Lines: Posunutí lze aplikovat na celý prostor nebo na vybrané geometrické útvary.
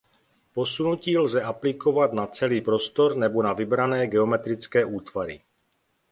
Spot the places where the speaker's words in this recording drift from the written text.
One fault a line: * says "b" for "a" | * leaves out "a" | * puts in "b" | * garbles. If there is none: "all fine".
all fine